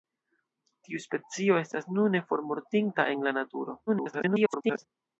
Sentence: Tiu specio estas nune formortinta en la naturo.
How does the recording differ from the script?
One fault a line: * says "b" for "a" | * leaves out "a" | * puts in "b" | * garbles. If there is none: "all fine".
* garbles